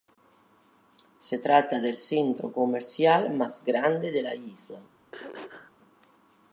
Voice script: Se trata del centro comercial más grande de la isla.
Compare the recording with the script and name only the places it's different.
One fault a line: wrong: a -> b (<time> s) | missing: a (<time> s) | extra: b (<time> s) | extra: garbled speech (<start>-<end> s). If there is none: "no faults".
no faults